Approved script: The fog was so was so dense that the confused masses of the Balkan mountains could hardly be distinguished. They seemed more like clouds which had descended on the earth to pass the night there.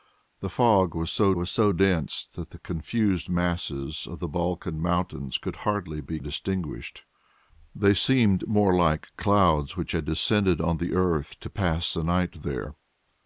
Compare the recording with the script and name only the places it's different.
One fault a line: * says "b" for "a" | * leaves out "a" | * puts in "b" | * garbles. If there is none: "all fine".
all fine